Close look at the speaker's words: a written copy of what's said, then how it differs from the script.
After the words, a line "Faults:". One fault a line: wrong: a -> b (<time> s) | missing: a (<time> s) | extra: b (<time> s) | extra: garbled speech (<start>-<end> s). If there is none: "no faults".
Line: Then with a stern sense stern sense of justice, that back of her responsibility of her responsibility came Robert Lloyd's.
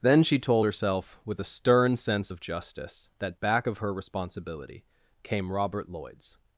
Then she told herself, with a stern sense of justice, that back of her responsibility came Robert Lloyd's.
Faults:
extra: she told herself (0.2 s)
missing: stern sense (2.3 s)
missing: of her responsibility (4.8 s)